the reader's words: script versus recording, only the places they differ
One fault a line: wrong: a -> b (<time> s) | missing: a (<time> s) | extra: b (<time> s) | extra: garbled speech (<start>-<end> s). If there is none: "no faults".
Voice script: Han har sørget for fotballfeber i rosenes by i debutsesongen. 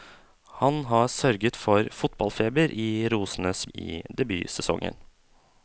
missing: by (3.6 s)